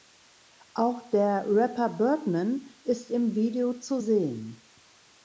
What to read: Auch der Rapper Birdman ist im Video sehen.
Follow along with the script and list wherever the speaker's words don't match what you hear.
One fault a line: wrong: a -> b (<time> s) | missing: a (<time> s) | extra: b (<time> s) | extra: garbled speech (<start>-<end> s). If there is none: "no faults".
extra: zu (3.8 s)